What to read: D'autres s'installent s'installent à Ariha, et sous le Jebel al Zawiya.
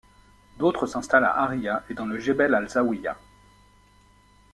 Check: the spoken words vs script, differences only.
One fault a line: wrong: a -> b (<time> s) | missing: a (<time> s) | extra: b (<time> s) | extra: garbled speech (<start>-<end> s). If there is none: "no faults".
missing: s'installent (1.2 s)
wrong: sous -> dans (1.9 s)